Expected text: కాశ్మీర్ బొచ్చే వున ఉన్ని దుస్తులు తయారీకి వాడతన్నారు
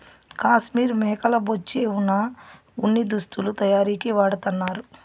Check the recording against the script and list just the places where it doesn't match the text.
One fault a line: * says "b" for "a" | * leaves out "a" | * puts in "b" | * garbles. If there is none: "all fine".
* puts in "మేకల"